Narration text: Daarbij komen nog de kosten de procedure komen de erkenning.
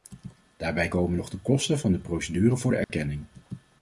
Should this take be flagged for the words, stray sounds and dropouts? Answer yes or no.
yes